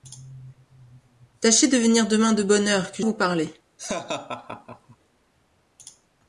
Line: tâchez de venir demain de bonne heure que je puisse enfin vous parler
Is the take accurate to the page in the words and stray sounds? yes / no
no